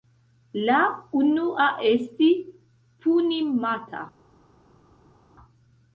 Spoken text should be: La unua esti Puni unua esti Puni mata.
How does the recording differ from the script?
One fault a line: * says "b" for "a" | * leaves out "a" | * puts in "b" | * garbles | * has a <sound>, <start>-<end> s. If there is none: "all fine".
* leaves out "unua esti Puni"